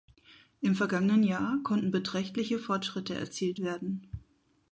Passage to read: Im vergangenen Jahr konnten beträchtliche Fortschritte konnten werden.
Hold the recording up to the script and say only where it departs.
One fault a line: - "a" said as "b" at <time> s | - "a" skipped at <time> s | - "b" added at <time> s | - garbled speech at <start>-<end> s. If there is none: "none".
- "konnten" said as "erzielt" at 3.1 s